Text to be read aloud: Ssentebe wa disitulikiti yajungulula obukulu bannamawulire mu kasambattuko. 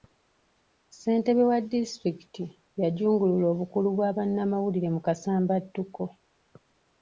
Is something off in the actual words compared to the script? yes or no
yes